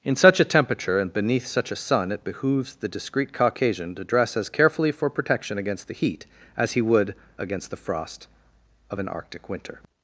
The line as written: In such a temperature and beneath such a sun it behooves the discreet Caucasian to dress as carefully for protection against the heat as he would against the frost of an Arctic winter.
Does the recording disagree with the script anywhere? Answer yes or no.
no